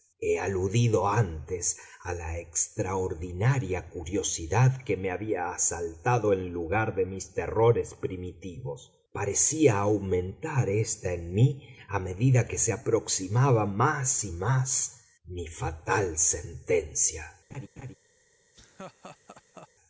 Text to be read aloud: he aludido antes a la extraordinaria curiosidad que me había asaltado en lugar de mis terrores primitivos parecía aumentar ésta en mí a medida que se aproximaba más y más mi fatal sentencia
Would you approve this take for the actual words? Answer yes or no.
yes